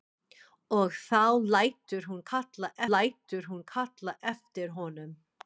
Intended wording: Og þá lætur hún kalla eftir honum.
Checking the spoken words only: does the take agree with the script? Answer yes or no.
no